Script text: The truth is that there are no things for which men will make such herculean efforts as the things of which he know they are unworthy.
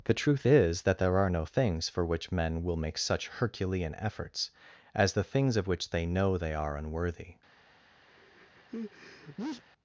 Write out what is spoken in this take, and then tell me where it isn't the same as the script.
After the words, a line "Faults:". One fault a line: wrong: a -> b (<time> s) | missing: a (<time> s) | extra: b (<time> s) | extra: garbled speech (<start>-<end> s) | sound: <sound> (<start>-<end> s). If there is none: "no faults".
The truth is that there are no things for which men will make such herculean efforts as the things of which they know they are unworthy.
Faults:
wrong: he -> they (5.9 s)
sound: sneeze (8.1-9.6 s)